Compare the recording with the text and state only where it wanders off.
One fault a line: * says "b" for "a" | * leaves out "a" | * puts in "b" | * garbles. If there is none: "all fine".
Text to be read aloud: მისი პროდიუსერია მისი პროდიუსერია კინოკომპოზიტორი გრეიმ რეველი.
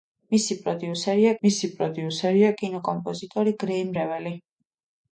all fine